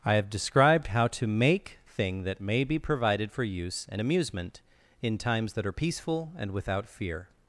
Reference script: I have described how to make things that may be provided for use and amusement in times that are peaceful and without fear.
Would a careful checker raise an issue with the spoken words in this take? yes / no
yes